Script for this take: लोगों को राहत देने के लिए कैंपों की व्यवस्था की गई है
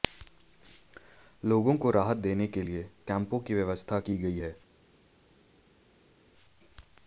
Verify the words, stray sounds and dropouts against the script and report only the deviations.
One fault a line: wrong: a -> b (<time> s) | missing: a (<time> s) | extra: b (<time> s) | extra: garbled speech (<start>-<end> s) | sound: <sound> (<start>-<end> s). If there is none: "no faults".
no faults